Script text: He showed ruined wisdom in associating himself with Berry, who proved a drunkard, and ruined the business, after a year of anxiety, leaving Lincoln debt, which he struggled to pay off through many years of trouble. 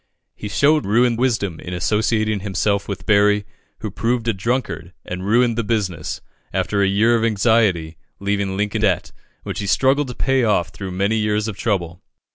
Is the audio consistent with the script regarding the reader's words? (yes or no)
yes